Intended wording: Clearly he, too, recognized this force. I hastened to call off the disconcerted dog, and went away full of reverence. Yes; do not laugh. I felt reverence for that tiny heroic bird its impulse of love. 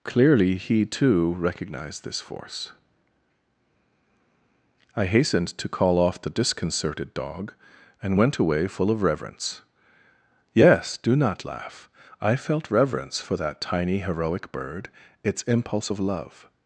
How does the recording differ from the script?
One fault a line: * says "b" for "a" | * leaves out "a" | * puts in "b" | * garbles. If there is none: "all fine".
all fine